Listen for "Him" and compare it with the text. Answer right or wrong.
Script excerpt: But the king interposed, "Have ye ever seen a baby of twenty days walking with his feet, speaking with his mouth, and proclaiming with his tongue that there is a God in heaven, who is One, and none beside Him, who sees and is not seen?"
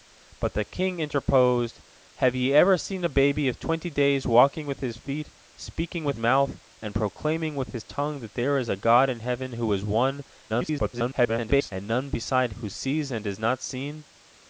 wrong